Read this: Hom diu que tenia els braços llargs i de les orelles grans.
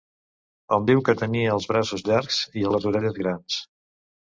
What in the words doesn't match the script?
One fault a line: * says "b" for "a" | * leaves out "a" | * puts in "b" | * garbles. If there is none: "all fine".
all fine